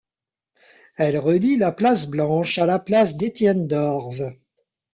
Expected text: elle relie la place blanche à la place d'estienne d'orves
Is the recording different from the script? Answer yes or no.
no